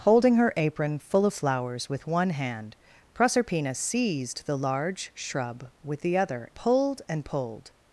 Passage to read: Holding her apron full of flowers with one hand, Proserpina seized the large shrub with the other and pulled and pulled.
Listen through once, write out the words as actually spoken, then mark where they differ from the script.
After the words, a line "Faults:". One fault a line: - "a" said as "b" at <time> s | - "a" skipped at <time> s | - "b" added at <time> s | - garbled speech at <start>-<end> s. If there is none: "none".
Holding her apron full of flowers with one hand, Proserpina seized the large shrub with the other pulled and pulled.
Faults:
- "and" skipped at 6.5 s